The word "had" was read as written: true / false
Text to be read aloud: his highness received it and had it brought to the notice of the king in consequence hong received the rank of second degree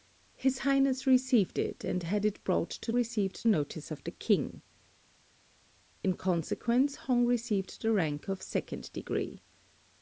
true